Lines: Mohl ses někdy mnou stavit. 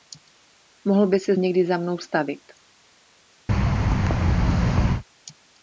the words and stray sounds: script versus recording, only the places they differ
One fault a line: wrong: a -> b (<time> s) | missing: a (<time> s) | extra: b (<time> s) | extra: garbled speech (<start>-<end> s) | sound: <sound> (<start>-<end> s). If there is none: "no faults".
extra: by (1.1 s)
extra: za (1.6 s)
sound: thud (3.5-5.0 s)